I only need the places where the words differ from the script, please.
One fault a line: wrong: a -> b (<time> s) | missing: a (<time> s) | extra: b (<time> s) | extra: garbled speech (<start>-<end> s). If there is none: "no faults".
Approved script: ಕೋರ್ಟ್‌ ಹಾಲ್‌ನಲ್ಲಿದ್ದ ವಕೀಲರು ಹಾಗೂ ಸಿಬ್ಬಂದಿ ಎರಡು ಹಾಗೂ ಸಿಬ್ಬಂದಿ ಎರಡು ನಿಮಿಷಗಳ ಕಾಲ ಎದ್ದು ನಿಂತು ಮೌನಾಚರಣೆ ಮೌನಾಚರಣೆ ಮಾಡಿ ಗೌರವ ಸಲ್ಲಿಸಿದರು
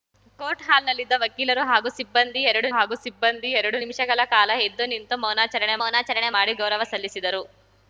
no faults